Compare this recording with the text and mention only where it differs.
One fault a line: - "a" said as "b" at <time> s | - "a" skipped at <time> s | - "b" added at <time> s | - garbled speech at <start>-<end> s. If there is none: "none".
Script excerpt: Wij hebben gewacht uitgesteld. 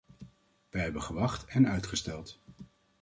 - "en" added at 1.4 s